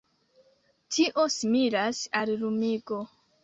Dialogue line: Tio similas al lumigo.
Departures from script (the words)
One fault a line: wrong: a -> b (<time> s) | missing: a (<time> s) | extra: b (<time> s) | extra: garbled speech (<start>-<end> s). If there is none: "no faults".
no faults